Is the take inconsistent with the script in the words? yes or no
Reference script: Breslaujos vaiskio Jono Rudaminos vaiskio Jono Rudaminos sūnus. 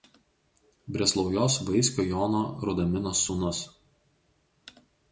yes